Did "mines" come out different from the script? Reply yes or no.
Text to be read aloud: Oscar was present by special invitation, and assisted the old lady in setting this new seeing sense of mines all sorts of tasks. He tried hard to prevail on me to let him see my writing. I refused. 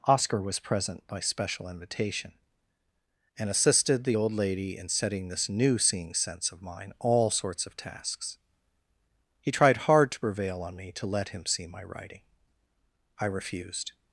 yes